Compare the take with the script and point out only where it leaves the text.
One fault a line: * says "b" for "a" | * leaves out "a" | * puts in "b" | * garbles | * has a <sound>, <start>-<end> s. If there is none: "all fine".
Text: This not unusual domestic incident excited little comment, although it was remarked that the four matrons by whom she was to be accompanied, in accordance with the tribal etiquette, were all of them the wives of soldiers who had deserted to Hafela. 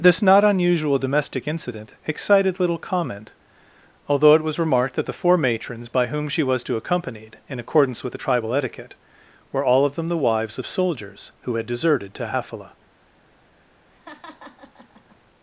* leaves out "be"
* has a laugh, 13.9-15.2 s